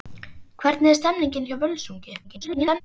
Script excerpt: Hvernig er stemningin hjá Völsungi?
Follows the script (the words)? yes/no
no